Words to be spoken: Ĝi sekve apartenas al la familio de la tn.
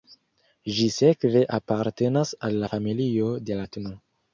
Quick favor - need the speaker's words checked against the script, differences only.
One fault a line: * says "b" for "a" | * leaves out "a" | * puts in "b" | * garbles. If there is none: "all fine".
all fine